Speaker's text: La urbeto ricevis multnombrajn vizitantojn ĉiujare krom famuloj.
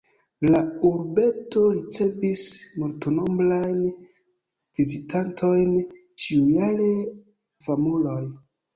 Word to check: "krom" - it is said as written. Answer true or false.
false